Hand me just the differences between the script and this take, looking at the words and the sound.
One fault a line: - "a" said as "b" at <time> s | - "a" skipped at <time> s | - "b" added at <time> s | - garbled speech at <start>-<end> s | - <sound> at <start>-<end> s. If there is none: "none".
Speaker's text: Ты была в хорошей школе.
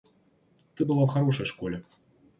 none